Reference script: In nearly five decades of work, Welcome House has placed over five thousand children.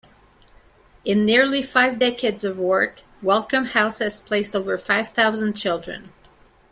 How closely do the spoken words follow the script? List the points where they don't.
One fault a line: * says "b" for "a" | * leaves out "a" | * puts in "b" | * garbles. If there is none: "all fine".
all fine